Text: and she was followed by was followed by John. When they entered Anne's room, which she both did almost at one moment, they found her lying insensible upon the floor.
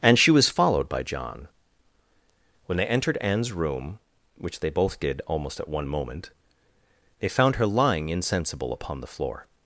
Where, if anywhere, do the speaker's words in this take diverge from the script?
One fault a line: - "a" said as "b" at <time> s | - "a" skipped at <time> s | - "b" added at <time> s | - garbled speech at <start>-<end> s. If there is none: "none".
- "was followed by" skipped at 1.0 s
- "she" said as "they" at 4.6 s